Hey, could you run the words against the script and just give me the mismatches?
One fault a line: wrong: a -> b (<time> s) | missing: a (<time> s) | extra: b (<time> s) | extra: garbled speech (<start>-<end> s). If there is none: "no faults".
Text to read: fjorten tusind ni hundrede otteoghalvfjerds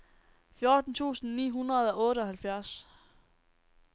extra: og (1.9 s)